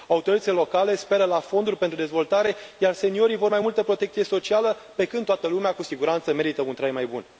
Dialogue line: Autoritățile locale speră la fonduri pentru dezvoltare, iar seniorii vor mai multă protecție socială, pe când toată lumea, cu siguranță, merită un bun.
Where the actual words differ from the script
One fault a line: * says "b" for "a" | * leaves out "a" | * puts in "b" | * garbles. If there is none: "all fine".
* puts in "trai mai"